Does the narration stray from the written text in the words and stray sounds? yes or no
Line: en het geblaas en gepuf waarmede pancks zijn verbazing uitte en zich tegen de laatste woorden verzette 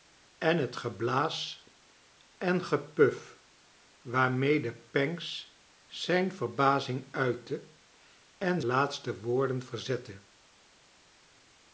yes